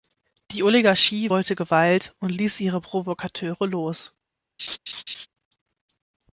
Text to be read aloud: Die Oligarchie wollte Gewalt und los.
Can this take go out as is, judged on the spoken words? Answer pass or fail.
fail